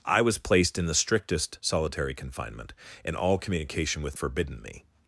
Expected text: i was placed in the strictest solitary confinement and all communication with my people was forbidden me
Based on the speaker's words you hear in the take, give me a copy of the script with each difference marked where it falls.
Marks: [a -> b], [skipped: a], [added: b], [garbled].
i was placed in the strictest solitary confinement and all communication with [skipped: my people was] forbidden me